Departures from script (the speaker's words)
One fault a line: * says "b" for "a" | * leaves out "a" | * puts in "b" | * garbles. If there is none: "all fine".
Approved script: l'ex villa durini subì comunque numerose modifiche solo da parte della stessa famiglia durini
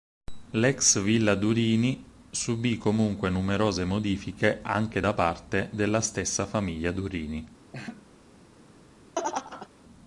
* says "anche" for "solo"